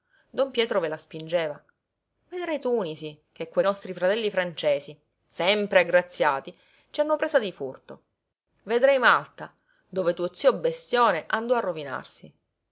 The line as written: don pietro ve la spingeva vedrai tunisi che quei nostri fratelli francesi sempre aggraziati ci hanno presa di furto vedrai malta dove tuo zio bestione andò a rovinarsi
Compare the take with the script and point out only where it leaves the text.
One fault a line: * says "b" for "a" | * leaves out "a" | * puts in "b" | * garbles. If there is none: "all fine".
all fine